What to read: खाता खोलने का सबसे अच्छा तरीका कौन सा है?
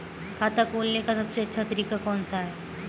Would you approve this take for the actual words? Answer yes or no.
yes